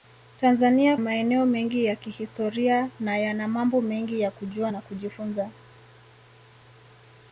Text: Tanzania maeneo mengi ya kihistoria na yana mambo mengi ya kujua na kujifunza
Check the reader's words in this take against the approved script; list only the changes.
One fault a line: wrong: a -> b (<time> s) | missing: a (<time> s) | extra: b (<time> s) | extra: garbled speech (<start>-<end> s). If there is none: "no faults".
no faults